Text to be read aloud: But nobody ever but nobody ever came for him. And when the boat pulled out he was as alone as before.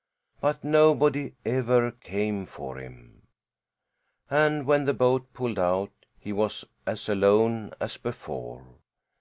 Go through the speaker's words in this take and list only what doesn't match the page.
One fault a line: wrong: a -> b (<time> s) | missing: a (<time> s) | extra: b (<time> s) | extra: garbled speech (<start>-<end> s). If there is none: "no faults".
missing: but nobody ever (1.9 s)